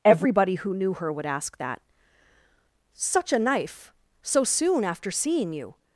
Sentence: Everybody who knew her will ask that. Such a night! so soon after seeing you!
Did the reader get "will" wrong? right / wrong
wrong